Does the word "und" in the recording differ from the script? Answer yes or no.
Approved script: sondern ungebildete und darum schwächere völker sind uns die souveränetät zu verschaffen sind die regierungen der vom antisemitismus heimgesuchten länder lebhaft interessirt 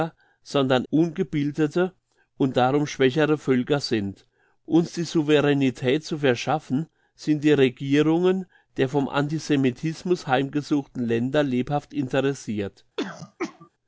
no